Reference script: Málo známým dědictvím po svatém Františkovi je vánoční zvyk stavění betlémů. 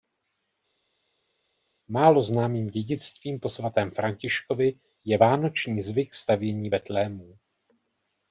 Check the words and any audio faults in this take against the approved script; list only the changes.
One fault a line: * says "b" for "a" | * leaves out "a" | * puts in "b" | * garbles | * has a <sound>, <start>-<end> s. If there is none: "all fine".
all fine